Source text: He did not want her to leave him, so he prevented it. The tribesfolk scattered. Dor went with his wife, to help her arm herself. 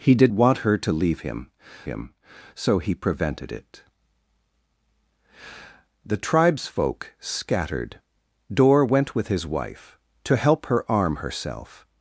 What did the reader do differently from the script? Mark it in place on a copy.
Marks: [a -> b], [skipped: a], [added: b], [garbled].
He did [skipped: not] want her to leave him, [added: him] so he prevented it. The tribesfolk scattered. Dor went with his wife, to help her arm herself.